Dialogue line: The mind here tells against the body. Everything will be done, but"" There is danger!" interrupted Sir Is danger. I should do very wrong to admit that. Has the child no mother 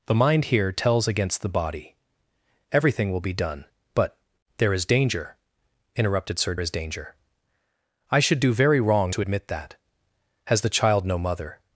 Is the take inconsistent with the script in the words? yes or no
no